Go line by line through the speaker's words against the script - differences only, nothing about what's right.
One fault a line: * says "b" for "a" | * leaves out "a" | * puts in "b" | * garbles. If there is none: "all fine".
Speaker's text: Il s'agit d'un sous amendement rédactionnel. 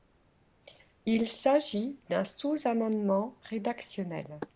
all fine